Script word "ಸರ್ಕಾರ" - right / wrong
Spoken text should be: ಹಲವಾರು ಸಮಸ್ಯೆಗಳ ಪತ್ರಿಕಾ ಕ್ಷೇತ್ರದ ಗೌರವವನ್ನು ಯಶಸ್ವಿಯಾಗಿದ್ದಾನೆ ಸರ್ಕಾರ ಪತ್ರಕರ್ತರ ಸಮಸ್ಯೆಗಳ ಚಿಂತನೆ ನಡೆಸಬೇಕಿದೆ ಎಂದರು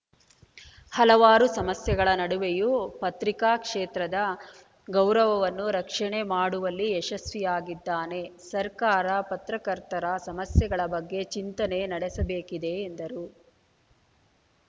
right